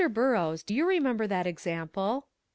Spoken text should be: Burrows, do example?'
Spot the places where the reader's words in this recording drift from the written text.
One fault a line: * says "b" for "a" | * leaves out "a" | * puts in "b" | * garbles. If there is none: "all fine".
* puts in "you remember that"